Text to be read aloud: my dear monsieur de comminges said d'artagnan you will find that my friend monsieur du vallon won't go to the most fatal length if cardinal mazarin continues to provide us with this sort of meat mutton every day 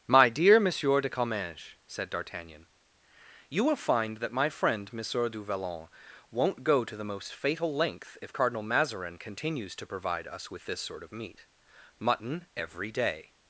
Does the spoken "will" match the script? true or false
true